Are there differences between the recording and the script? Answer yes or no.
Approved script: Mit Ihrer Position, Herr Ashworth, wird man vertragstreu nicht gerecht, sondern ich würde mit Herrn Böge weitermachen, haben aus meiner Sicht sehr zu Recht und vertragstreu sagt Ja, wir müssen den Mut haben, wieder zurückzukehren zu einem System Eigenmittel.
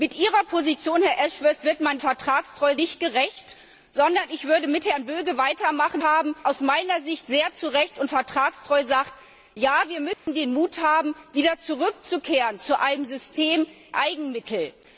no